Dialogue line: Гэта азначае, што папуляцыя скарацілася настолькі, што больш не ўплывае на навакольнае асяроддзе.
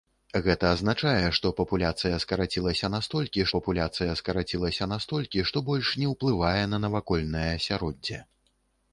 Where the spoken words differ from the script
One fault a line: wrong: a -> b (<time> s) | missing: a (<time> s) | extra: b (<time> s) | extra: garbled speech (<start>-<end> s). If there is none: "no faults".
extra: папуляцыя скарацілася настолькі (3.5 s)